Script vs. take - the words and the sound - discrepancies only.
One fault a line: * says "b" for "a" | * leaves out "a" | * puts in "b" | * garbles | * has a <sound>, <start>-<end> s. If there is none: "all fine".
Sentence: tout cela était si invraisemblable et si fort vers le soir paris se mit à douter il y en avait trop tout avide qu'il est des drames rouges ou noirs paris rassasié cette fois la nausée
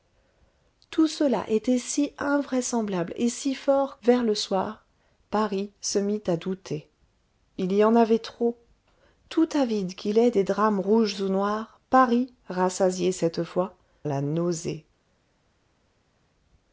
all fine